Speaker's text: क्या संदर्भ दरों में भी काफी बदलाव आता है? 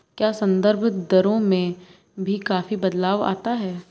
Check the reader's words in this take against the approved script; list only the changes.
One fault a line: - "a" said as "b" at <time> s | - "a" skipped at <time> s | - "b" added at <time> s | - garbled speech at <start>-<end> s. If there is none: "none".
none